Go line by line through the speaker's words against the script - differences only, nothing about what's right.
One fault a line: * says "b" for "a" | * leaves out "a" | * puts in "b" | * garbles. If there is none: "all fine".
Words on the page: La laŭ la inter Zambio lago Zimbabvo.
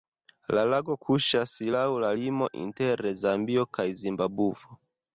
* puts in "lago kuŝas"
* puts in "limo"
* says "kaj" for "lago"